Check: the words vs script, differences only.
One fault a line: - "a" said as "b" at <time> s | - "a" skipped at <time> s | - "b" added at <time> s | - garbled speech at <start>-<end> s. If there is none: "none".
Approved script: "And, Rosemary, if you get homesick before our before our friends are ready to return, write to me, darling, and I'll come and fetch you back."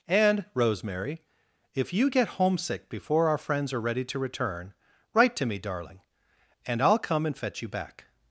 - "before our" skipped at 3.4 s